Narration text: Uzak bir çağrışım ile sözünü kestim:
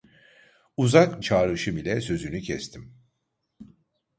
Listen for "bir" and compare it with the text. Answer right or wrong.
wrong